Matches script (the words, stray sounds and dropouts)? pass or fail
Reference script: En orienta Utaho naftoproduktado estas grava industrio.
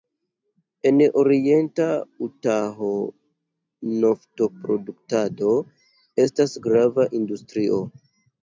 pass